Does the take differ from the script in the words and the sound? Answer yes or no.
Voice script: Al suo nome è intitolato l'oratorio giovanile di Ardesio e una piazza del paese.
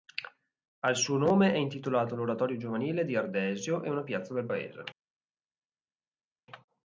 no